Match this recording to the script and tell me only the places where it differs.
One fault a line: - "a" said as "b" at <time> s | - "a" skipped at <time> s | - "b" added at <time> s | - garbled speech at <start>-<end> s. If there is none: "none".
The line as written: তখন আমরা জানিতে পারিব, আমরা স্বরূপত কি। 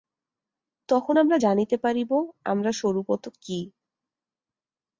none